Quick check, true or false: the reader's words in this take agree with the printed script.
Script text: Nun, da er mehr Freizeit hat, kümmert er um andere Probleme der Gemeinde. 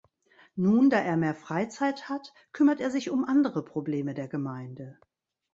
false